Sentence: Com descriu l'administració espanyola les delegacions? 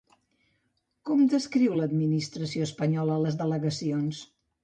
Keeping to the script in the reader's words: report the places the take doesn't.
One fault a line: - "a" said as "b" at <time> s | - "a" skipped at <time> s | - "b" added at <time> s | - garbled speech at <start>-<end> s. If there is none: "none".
none